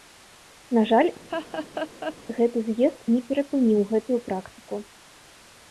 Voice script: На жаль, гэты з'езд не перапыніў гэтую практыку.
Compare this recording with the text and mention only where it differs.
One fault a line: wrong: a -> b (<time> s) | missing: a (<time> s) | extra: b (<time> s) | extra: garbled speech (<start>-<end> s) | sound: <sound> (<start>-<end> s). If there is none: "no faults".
sound: laugh (1.3-2.2 s)